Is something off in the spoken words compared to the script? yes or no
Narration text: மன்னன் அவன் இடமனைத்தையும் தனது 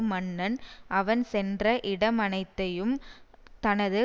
yes